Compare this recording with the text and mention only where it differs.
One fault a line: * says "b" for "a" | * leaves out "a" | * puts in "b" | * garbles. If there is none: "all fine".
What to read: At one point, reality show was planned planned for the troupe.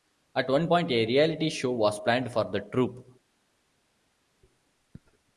* puts in "a"
* leaves out "planned"